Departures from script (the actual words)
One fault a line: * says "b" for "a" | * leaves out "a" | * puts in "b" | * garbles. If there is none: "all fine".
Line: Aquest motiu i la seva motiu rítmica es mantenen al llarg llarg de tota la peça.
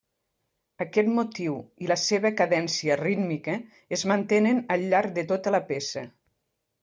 * says "cadència" for "motiu"
* leaves out "llarg"